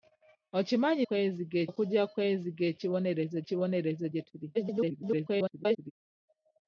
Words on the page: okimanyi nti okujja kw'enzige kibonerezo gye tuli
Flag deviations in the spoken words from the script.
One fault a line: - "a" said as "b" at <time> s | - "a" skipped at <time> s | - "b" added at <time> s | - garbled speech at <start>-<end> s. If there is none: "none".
- "nti" said as "kw'enzige" at 1.0 s
- "kibonerezo" added at 3.5 s
- garbled speech at 4.5-5.9 s